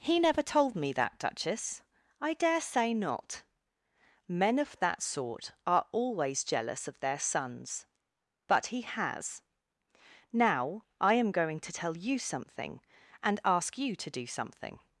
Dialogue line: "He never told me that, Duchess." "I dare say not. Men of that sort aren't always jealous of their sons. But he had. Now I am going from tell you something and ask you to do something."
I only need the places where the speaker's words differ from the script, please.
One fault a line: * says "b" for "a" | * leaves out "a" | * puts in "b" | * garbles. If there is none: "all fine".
* says "are" for "aren't"
* says "has" for "had"
* says "to" for "from"